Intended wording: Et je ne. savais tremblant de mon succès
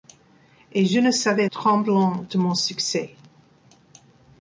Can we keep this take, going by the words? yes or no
yes